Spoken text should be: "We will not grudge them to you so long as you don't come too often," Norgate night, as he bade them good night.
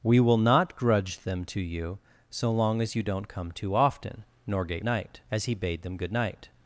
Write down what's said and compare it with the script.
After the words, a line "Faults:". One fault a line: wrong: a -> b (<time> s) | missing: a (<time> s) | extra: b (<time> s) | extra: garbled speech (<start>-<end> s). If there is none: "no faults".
"We will not grudge them to you so long as you don't come too often," Norgate night, as he bade them good night.
Faults:
no faults